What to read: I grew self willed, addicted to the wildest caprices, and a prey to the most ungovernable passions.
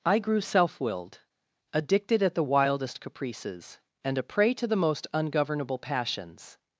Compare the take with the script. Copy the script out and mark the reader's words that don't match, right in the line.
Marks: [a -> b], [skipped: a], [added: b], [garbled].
I grew self willed, addicted [to -> at] the wildest caprices, and a prey to the most ungovernable passions.